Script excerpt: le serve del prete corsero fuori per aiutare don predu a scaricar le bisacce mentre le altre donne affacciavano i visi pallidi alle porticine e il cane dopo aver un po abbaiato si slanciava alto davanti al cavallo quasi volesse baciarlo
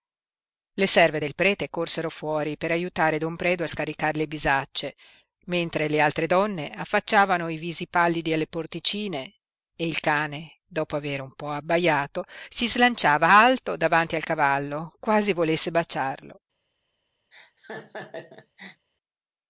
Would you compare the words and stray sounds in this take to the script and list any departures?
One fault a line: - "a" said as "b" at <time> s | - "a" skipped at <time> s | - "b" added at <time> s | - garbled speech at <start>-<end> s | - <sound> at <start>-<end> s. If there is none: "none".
- laugh at 17.3-18.9 s